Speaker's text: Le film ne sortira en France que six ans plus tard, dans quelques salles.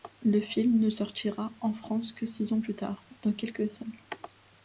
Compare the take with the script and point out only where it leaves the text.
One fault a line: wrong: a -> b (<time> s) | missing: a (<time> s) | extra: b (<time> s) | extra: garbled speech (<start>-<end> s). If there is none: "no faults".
no faults